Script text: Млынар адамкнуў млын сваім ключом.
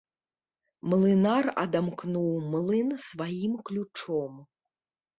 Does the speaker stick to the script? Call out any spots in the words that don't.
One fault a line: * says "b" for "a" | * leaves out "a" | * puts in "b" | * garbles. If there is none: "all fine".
all fine